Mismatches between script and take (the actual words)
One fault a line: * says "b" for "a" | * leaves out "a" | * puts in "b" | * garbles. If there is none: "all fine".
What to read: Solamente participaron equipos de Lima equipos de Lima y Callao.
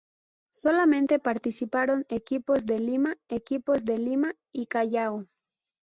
all fine